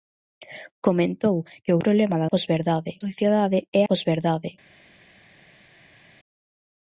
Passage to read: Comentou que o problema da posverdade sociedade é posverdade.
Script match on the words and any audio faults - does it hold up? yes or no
yes